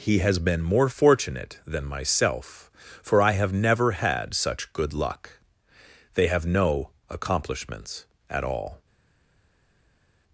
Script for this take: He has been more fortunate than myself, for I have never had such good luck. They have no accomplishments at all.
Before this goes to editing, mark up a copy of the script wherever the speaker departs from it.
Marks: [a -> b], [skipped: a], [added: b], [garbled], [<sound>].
He has been more fortunate than myself, for I have never had such good luck. They have no accomplishments at all.